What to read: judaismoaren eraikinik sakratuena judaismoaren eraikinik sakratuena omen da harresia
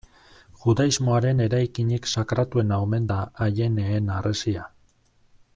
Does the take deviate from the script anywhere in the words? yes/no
yes